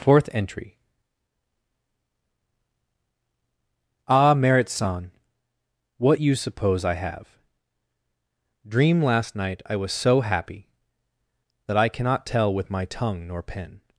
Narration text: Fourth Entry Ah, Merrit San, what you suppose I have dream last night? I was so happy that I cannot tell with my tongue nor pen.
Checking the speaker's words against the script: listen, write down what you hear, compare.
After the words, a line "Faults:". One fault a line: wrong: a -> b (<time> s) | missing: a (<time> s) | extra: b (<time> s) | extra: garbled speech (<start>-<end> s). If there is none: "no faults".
Fourth Entry Ah, Merrit San, what you suppose I have dream last night? I was so happy that I cannot tell with my tongue nor pen.
Faults:
no faults